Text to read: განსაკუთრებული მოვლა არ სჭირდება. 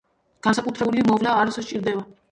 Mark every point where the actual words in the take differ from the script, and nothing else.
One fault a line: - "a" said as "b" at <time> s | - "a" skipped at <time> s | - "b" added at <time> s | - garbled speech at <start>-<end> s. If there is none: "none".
none